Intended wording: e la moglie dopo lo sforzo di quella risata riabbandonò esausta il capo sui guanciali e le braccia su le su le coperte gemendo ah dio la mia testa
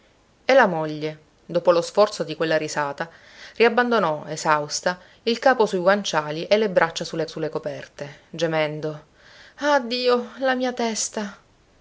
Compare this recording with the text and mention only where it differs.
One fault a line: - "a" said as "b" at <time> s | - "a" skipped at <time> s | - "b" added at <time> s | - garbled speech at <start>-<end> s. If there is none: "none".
none